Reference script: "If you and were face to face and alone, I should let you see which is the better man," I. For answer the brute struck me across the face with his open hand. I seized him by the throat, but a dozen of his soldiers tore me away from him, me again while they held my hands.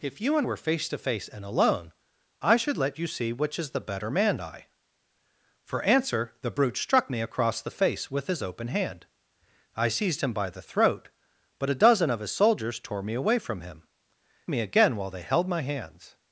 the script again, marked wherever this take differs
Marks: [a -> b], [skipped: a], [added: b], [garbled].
"If you and were face to face and alone, I should let you see which is the better man," I. For answer the brute struck me across the face with his open hand. I seized him by the throat, but a dozen of his soldiers tore me away from him, me again while they held my hands.